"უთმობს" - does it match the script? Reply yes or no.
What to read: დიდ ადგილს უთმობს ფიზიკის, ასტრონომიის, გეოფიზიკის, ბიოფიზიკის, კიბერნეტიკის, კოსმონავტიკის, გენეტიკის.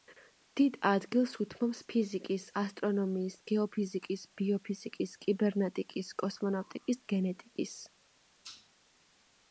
yes